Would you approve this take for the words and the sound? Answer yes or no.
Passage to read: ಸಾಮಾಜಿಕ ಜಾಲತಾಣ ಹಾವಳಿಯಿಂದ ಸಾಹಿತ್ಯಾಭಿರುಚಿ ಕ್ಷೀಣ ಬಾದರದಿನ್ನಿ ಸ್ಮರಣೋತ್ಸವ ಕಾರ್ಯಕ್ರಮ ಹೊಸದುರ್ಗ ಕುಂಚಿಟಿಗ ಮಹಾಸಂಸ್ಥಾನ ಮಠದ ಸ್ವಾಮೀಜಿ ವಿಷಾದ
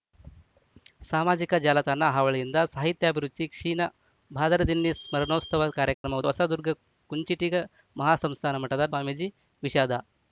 no